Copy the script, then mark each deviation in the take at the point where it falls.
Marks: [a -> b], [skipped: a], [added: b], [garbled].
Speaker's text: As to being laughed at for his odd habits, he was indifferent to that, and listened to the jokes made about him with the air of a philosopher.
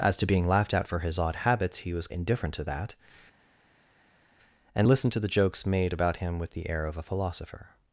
As to being laughed at for his odd habits, he was indifferent to that, and listened to the jokes made about him with the air of a philosopher.